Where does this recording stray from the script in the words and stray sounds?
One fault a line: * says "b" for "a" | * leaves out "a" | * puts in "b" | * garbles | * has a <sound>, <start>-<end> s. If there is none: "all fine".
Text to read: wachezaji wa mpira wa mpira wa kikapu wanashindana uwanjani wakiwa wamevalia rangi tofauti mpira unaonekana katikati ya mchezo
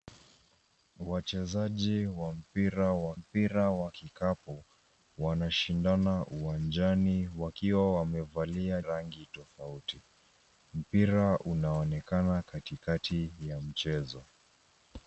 all fine